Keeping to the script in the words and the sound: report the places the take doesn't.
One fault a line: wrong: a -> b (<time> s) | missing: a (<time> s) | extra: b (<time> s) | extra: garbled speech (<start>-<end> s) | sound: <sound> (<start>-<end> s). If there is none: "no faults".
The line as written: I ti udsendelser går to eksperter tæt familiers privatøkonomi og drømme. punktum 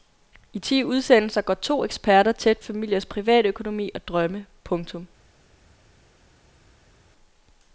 no faults